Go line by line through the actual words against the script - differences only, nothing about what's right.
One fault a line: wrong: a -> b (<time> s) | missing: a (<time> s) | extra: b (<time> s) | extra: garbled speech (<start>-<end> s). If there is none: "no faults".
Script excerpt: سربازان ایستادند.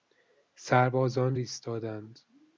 no faults